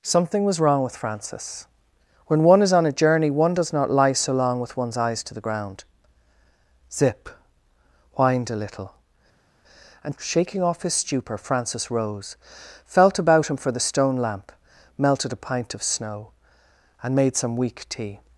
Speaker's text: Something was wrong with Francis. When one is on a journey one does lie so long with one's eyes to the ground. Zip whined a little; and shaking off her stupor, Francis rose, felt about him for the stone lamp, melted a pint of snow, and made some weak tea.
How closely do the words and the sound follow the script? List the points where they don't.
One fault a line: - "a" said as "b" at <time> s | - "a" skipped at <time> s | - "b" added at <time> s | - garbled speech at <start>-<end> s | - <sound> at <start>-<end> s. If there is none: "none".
- "not" added at 3.7 s
- "her" said as "his" at 10.8 s